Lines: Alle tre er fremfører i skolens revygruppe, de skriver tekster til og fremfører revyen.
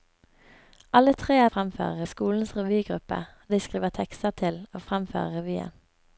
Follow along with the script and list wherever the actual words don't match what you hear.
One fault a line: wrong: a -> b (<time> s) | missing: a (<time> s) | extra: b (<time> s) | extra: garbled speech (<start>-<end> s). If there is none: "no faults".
no faults